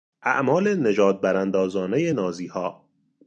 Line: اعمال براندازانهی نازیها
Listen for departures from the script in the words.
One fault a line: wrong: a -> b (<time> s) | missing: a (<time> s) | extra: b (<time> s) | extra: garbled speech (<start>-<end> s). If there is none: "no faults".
extra: نژاد (0.8 s)